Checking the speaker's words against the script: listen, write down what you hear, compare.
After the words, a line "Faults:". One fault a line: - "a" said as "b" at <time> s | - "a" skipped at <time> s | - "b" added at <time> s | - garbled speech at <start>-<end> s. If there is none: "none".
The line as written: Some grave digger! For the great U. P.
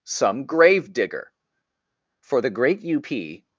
Some grave digger! For the great U. P.
Faults:
none